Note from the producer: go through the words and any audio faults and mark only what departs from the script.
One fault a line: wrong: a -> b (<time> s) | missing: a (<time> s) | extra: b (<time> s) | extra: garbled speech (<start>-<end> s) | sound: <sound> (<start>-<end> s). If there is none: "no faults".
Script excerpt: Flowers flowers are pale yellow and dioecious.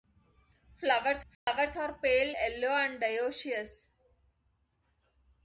sound: dropout (1.3-1.5 s)